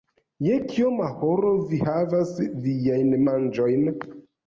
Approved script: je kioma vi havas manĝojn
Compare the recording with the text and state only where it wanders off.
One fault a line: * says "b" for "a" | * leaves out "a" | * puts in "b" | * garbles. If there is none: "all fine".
* puts in "horo"
* puts in "viajn"